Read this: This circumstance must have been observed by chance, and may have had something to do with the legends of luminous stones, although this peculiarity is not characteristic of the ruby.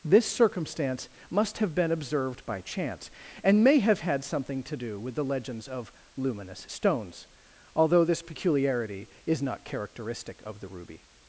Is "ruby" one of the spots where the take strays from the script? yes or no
no